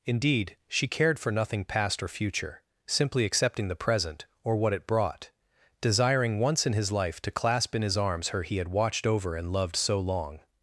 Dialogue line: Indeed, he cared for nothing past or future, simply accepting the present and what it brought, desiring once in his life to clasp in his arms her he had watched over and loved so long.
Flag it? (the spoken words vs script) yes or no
yes